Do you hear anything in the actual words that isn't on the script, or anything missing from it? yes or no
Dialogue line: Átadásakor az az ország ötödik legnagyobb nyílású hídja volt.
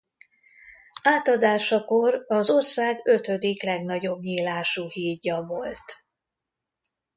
yes